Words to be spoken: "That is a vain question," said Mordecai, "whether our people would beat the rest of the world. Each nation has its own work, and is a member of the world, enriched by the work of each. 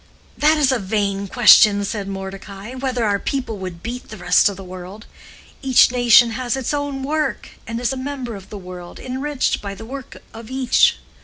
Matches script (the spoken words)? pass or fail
pass